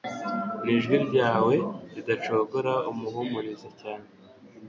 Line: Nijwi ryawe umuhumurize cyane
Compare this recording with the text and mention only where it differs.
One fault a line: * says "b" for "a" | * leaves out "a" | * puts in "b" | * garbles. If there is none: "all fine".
* puts in "ridacogora"